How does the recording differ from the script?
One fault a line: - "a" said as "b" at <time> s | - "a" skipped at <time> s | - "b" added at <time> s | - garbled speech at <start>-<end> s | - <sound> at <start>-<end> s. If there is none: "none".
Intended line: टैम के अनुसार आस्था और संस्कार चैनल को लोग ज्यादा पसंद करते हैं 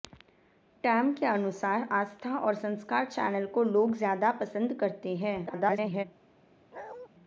- garbled speech at 5.5-6.0 s
- bark at 6.7-7.1 s